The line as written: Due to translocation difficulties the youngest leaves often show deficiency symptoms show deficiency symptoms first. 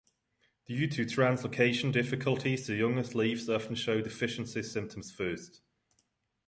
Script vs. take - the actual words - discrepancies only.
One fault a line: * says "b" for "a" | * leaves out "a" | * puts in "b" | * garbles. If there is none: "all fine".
* leaves out "show deficiency symptoms"